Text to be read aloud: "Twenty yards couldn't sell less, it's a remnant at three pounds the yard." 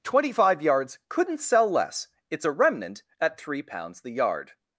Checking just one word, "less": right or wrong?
right